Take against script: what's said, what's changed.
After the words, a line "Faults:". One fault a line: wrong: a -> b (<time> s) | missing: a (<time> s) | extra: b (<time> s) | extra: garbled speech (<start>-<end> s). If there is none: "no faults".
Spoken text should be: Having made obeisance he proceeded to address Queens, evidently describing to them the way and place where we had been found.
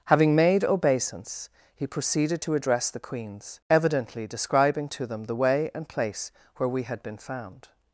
Having made obeisance he proceeded to address the Queens, evidently describing to them the way and place where we had been found.
Faults:
extra: the (2.9 s)